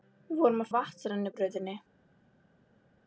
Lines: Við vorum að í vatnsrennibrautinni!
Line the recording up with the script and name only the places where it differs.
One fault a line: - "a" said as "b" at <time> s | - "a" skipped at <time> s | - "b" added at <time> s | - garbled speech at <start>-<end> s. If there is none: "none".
none